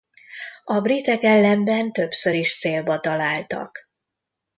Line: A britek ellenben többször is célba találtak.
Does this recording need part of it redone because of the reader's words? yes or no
no